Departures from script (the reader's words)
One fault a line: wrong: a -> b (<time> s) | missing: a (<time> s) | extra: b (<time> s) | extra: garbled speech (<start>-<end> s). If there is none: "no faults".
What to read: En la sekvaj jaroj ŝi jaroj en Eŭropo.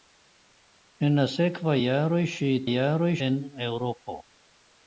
no faults